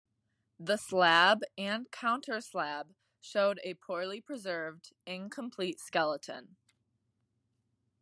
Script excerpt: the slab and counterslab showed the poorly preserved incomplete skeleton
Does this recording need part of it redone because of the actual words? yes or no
yes